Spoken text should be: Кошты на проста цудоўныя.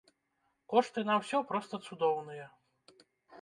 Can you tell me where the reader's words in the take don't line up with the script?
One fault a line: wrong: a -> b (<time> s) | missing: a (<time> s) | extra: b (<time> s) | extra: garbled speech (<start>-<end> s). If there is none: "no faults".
extra: ўсё (1.2 s)